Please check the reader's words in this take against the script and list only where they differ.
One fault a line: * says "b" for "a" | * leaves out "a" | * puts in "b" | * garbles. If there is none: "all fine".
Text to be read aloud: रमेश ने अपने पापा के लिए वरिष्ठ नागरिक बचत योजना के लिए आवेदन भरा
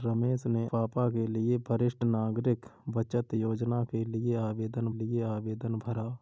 * leaves out "अपने"
* puts in "लिए आवेदन"